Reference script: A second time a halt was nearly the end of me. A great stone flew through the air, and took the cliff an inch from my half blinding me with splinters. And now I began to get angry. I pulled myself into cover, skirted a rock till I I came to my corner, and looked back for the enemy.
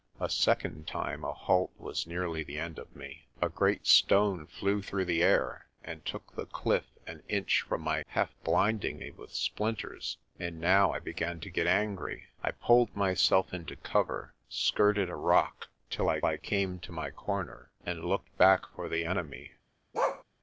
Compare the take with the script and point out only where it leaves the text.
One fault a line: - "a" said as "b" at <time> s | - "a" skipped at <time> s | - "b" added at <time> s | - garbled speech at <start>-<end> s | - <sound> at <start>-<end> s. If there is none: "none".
- bark at 19.9-20.2 s